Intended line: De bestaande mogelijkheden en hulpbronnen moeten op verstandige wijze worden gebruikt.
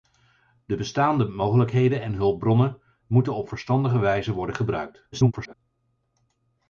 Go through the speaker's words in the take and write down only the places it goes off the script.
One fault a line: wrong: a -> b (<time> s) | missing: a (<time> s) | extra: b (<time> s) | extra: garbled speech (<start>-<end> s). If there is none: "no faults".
extra: garbled speech (5.1-5.5 s)